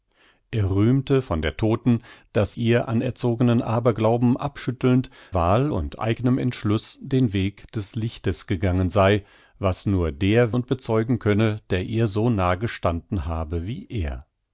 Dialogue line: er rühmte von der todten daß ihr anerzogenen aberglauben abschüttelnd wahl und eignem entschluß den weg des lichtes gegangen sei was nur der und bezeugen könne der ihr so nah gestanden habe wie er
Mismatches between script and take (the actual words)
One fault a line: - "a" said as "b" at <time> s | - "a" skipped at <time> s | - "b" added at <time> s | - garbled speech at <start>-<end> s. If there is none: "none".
none